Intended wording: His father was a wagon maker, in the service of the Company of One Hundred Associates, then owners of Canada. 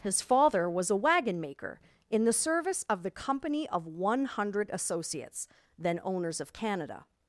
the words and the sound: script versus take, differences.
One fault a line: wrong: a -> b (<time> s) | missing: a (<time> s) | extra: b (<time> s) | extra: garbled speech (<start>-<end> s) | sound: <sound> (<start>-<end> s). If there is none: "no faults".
no faults